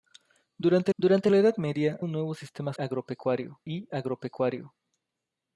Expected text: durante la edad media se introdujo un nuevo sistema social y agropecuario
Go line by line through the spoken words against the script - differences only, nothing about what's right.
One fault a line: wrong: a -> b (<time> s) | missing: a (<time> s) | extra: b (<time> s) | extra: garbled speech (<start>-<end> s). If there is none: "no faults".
extra: durante (1.0 s)
missing: se introdujo (2.0 s)
wrong: social -> agropecuario (2.8 s)